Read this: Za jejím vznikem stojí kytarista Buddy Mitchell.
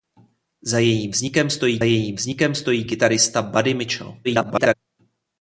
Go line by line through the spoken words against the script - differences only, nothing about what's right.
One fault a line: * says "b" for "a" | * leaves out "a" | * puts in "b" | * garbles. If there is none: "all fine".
* puts in "jejím vznikem stojí"
* garbles